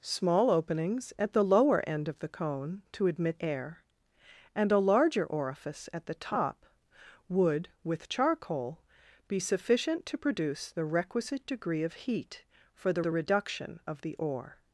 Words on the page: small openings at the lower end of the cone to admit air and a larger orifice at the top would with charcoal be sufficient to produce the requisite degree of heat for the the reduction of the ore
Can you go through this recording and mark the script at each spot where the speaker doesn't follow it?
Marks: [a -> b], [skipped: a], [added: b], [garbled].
small openings at the lower end of the cone to admit air and a larger orifice at the top would with charcoal be sufficient to produce the requisite degree of heat for the the reduction of the ore